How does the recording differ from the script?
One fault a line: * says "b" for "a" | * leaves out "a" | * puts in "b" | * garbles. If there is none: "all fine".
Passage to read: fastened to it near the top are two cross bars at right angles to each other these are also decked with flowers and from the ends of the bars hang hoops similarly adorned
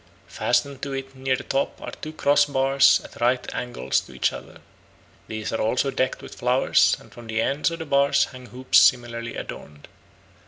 all fine